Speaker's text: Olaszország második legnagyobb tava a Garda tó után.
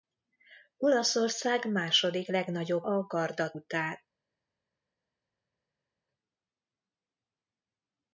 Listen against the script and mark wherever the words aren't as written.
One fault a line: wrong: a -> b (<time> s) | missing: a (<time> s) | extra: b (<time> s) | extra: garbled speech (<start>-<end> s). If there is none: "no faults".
missing: tava (2.8 s)
missing: tó (3.5 s)